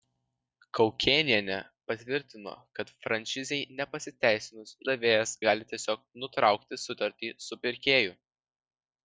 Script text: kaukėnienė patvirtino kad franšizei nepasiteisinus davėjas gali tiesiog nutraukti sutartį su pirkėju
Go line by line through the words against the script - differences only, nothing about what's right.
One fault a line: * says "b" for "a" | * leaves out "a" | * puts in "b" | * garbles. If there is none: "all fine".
all fine